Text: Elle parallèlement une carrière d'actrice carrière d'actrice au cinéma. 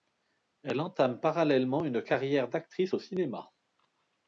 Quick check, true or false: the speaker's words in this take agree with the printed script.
false